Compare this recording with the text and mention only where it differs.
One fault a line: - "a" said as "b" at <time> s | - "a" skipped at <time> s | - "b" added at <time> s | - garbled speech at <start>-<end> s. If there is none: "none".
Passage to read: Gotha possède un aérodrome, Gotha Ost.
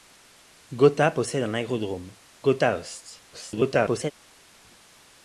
- garbled speech at 3.3-4.1 s